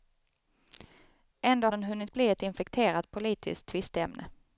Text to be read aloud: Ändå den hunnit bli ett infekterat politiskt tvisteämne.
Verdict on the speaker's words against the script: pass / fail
pass